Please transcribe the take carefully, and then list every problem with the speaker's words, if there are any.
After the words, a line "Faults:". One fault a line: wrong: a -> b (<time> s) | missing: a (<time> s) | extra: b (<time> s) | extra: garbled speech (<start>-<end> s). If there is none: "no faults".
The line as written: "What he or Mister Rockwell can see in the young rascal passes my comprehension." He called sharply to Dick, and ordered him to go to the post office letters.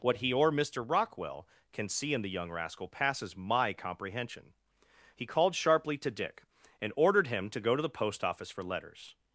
"What he or Mister Rockwell can see in the young rascal passes my comprehension." He called sharply to Dick, and ordered him to go to the post office for letters.
Faults:
extra: for (8.5 s)